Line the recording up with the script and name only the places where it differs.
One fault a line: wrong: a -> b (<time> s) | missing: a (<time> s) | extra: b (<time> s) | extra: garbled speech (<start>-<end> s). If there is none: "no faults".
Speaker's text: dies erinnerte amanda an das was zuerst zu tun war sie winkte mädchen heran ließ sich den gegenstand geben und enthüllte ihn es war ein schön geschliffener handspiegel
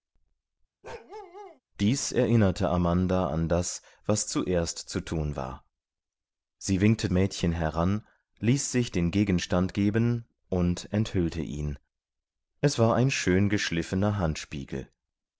no faults